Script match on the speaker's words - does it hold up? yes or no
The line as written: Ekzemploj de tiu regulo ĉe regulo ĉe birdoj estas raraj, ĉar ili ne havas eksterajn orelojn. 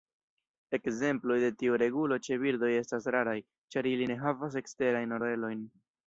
no